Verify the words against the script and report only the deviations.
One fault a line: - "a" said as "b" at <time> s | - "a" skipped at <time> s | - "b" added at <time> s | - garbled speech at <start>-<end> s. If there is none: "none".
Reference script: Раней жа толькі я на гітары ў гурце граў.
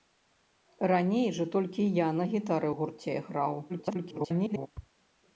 - garbled speech at 3.7-4.7 s